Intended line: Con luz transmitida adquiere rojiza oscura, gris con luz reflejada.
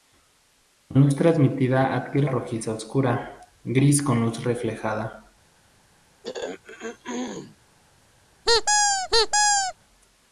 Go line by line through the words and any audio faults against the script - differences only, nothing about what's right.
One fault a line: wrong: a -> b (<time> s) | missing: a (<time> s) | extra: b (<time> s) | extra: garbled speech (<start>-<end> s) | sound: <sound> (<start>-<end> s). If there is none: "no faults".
sound: throat clearing (6.2-7.6 s)
sound: squeak (8.5-9.7 s)